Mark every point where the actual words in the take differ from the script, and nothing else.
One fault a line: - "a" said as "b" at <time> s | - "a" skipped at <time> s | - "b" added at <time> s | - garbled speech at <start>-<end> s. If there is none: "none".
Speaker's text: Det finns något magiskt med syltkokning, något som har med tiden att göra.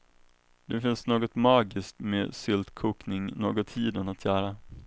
- "som har med" skipped at 3.7 s